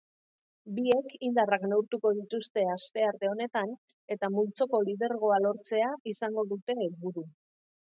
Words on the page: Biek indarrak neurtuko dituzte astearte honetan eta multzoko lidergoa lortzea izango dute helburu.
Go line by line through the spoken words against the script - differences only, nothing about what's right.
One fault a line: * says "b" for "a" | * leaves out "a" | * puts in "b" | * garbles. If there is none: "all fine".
all fine